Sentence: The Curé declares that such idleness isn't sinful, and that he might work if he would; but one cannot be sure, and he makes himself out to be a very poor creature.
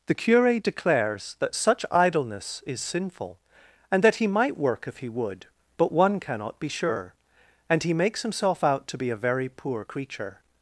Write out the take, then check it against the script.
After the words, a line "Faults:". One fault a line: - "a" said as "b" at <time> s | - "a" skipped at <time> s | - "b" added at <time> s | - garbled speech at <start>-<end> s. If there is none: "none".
The Curé declares that such idleness is sinful, and that he might work if he would; but one cannot be sure, and he makes himself out to be a very poor creature.
Faults:
- "isn't" said as "is" at 2.6 s